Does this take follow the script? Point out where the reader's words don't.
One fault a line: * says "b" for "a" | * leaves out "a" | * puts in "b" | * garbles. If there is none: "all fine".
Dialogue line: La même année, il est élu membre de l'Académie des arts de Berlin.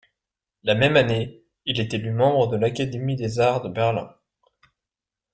all fine